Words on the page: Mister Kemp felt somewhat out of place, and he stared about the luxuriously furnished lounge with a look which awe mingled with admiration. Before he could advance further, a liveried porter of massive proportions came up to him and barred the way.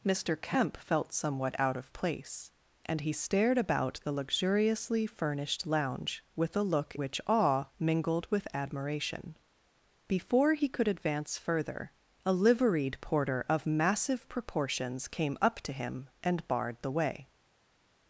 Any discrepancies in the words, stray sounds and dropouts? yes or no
no